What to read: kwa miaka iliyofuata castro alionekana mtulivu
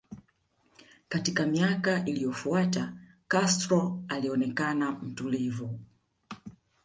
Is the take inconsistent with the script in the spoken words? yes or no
yes